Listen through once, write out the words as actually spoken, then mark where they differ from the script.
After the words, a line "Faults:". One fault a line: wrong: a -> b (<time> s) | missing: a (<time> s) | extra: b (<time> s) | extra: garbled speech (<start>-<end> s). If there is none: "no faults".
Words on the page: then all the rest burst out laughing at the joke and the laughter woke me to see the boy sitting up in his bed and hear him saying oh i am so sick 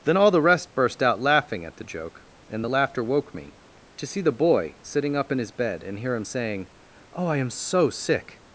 then all the rest burst out laughing at the joke and the laughter woke me to see the boy sitting up in his bed and hear him saying oh i am so sick
Faults:
no faults